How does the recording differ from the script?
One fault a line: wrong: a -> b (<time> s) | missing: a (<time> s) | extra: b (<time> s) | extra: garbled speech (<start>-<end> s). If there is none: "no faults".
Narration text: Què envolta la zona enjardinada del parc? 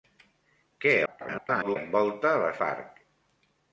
extra: garbled speech (1.1-1.8 s)
missing: zona enjardinada del (2.5 s)